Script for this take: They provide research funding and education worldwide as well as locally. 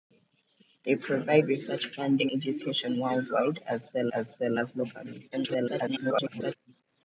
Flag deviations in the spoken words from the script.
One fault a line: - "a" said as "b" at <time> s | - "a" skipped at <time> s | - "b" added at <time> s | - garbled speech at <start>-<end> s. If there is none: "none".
- "and" skipped at 2.3 s
- "well as" added at 4.4 s
- garbled speech at 5.3-6.6 s